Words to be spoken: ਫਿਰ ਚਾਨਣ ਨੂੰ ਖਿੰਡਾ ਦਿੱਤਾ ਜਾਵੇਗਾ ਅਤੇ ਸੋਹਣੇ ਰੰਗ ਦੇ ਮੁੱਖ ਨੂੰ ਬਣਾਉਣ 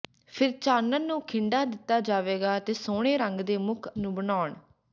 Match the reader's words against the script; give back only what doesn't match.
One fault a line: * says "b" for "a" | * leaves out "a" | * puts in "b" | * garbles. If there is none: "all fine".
all fine